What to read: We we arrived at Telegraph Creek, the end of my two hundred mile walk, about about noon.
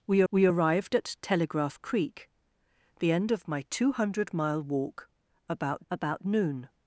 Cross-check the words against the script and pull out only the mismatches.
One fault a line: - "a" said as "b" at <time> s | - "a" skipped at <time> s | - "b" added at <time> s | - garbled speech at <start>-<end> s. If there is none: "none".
none